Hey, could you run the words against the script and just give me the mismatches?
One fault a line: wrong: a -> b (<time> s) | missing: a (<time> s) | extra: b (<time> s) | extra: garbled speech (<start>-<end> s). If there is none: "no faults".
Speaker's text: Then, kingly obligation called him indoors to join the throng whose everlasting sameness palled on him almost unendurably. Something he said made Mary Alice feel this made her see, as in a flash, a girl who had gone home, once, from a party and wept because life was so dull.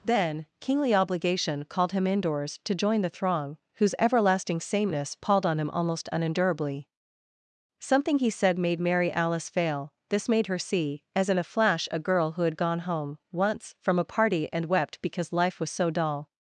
wrong: feel -> fail (9.5 s)